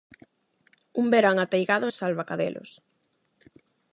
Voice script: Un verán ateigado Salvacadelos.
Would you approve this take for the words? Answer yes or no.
yes